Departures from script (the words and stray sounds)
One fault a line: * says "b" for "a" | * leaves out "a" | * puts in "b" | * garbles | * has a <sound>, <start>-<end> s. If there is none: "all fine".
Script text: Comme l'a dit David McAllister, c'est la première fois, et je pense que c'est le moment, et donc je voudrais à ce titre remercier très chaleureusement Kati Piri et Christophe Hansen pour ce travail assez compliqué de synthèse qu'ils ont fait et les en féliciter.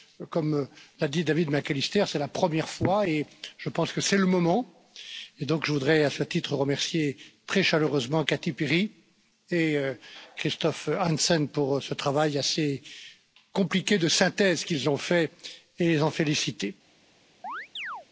* has a chirp, 17.4-18.1 s